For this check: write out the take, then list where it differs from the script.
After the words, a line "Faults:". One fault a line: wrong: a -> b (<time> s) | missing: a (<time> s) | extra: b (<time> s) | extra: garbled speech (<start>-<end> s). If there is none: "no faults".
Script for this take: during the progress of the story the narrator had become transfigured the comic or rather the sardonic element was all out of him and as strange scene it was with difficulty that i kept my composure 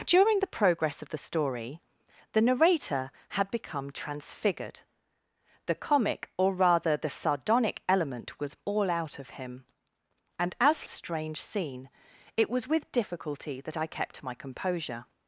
during the progress of the story the narrator had become transfigured the comic or rather the sardonic element was all out of him and as strange scene it was with difficulty that i kept my composure
Faults:
no faults